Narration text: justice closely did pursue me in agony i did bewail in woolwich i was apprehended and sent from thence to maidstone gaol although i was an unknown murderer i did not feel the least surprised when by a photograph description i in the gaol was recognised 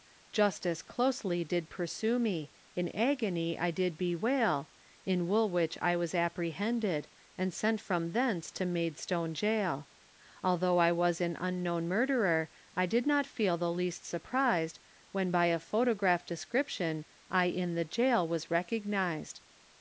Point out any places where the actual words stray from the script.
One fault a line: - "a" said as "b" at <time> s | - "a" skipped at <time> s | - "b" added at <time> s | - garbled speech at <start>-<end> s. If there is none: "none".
none